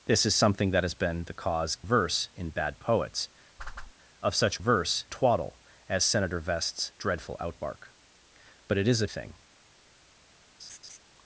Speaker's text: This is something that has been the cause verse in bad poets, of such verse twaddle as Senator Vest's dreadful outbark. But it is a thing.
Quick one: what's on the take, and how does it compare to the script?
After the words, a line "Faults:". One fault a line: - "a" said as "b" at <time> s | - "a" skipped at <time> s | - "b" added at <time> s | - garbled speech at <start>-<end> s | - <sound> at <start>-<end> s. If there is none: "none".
This is something that has been the cause verse in bad poets, of such verse twaddle as Senator Vest's dreadful outbark. But it is a thing.
Faults:
- whoosh at 3.6-3.9 s
- laugh at 10.6-11.0 s